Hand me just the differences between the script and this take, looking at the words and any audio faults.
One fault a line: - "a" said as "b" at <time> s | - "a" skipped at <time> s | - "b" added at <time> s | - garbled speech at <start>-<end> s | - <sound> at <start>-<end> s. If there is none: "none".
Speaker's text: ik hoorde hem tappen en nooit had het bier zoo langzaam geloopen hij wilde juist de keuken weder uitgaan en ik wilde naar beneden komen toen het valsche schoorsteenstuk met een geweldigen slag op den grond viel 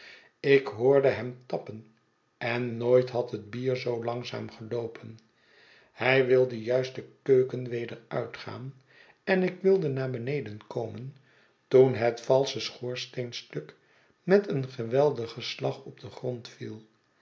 none